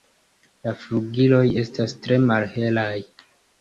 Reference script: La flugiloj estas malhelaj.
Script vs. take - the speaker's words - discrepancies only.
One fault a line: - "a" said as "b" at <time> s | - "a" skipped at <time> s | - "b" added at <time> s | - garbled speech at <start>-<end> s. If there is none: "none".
- "tre" added at 2.1 s